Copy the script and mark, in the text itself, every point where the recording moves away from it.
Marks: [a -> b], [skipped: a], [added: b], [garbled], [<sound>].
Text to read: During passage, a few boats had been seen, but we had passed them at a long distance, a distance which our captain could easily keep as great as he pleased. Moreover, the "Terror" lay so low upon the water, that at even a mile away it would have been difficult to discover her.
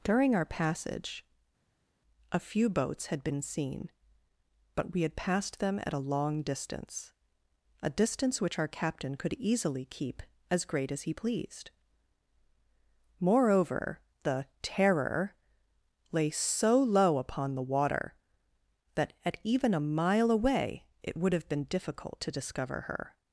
During [added: our] passage, a few boats had been seen, but we had passed them at a long distance, a distance which our captain could easily keep as great as he pleased. Moreover, the "Terror" lay so low upon the water, that at even a mile away it would have been difficult to discover her.